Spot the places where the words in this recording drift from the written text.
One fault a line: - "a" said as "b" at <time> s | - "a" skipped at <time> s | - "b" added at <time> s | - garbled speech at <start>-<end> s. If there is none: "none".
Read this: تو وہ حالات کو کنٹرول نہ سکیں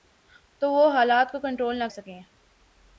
none